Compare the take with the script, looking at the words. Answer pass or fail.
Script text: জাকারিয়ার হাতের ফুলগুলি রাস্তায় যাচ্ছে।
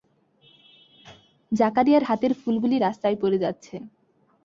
fail